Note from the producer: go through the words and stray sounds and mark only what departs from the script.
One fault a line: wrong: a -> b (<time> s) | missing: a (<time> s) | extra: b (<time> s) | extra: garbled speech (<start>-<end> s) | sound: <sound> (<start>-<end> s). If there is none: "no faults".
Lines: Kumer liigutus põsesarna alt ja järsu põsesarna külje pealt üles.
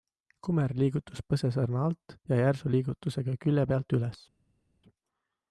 wrong: põsesarna -> liigutusega (2.7 s)